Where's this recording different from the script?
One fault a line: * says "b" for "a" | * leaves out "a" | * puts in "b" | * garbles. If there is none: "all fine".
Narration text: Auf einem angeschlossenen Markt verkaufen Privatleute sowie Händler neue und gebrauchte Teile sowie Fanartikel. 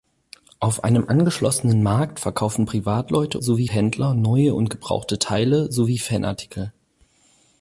all fine